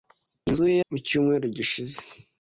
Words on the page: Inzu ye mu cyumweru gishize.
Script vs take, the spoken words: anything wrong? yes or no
no